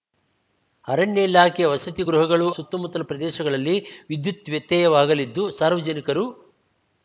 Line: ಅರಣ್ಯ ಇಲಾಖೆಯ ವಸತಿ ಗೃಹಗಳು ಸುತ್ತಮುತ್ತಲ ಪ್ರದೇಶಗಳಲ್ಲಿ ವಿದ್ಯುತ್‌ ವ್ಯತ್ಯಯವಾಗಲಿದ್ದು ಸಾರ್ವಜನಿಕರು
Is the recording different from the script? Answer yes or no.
no